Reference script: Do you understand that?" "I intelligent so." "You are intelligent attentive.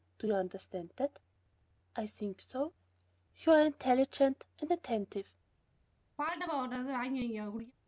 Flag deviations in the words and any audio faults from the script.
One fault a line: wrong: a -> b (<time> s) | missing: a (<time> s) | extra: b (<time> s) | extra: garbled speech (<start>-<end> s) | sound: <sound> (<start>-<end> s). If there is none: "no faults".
wrong: intelligent -> think (2.1 s)
extra: and (4.6 s)
sound: throat clearing (6.2-7.7 s)